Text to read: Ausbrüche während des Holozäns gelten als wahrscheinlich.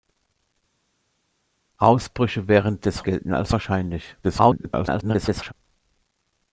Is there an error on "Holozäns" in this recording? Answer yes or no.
yes